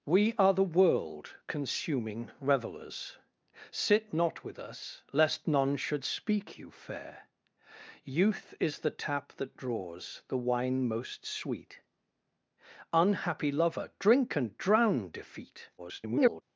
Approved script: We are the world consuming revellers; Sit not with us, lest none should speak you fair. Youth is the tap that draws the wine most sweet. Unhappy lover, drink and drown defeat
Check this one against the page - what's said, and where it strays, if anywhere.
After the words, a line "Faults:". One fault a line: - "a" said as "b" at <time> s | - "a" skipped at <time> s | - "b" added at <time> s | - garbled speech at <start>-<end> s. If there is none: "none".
We are the world consuming revellers; Sit not with us, lest none should speak you fair. Youth is the tap that draws the wine most sweet. Unhappy lover, drink and drown defeat [garbled]
Faults:
- garbled speech at 15.8-16.4 s